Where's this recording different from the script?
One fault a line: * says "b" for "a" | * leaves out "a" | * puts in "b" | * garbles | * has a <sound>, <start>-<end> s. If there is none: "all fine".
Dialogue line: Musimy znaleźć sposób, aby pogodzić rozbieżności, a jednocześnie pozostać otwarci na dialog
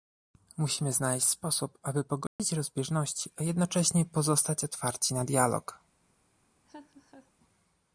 * has a dropout, 2.3-2.4 s
* has a laugh, 6.7-7.3 s